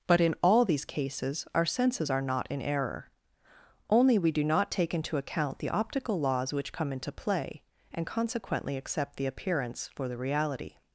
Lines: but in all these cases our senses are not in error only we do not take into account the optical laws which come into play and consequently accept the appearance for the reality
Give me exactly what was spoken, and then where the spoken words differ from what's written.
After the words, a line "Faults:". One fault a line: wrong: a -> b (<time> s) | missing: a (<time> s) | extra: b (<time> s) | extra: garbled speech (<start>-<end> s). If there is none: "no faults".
but in all these cases our senses are not in error only we do not take into account the optical laws which come into play and consequently accept the appearance for the reality
Faults:
no faults